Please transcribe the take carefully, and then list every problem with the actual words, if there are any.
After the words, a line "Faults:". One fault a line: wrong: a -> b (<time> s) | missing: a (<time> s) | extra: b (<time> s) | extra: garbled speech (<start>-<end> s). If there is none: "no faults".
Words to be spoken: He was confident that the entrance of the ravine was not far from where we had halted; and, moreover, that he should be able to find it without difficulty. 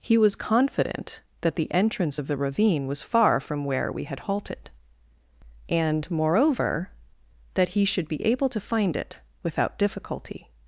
He was confident that the entrance of the ravine was far from where we had halted; and, moreover, that he should be able to find it without difficulty.
Faults:
missing: not (3.0 s)